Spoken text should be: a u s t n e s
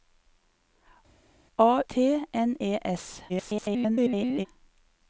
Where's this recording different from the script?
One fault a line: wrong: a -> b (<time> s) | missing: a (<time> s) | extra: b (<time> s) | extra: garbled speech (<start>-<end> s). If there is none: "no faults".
missing: u s (1.8 s)
extra: garbled speech (3.3-4.5 s)